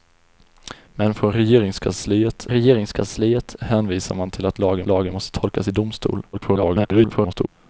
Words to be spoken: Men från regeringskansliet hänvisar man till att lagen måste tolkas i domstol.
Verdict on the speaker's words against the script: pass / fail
fail